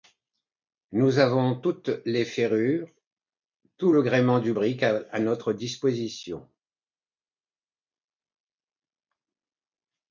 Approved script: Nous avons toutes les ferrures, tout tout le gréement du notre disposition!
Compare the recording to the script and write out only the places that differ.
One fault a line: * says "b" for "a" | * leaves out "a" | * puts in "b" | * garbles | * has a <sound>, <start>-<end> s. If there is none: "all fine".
* leaves out "tout"
* puts in "brick à"